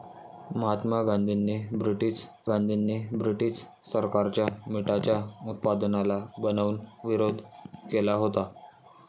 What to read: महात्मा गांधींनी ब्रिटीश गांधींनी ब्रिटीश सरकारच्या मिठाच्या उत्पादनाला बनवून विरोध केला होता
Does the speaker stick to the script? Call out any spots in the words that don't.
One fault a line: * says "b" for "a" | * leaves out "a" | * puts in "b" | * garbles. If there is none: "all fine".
all fine